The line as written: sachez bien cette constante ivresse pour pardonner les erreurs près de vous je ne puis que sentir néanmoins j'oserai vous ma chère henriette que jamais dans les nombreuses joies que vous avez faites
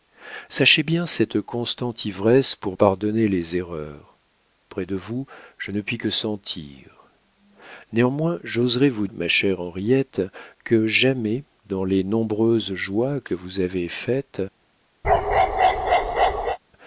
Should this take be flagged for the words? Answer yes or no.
no